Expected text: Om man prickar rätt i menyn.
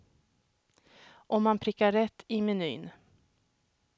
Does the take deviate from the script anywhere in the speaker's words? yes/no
no